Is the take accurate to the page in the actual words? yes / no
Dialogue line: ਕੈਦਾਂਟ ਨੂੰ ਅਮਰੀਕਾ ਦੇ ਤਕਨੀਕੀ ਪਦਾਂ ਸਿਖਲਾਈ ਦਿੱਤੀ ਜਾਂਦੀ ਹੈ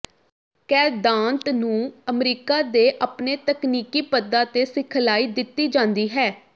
no